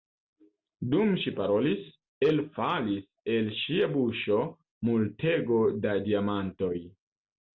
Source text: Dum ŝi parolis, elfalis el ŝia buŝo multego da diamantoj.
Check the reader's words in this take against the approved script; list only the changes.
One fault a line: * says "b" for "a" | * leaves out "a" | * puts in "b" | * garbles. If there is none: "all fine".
all fine